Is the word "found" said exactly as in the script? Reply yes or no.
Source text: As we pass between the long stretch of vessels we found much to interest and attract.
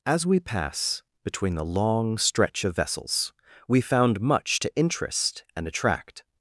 yes